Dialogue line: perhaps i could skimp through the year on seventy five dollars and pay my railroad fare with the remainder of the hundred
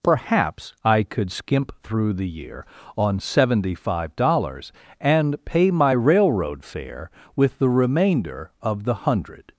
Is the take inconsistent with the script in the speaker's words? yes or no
no